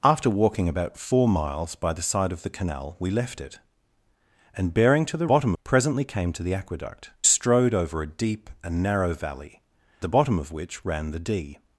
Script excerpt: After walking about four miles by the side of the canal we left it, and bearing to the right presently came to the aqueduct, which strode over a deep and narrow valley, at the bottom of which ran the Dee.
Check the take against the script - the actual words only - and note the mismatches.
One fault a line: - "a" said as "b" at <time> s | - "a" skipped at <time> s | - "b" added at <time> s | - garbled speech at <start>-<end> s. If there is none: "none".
- "right" said as "bottom" at 5.3 s
- "which" skipped at 7.1 s
- "at" skipped at 9.6 s